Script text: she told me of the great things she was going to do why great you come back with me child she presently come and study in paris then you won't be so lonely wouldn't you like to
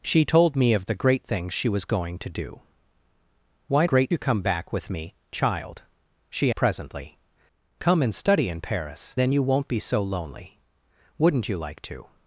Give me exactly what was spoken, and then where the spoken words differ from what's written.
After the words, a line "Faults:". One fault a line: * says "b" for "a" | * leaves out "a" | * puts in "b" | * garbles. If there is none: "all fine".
she told me of the great things she was going to do why great you come back with me child she presently come and study in paris then you won't be so lonely wouldn't you like to
Faults:
all fine